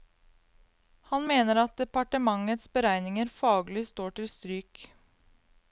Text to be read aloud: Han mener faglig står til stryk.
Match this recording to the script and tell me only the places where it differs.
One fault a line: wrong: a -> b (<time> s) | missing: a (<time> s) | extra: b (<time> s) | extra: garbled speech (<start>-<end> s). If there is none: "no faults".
extra: at departementets beregninger (1.6 s)